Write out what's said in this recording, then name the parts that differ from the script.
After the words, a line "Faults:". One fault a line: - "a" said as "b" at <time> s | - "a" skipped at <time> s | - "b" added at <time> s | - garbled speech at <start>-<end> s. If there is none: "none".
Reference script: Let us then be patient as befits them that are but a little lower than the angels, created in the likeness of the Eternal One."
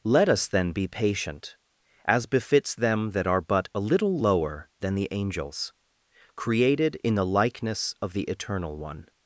Let us then be patient as befits them that are but a little lower than the angels, created in the likeness of the Eternal One."
Faults:
none